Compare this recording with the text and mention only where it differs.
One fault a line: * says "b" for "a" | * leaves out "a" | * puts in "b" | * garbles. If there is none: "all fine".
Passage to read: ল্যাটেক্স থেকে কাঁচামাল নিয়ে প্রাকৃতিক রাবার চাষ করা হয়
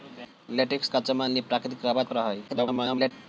* leaves out "থেকে"
* leaves out "চাষ"
* garbles